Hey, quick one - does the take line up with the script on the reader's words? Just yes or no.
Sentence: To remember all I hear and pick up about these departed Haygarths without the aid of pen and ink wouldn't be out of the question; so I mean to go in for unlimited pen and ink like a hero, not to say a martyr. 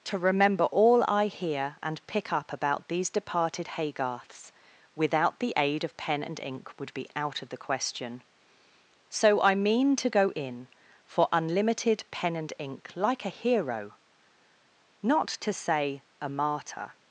no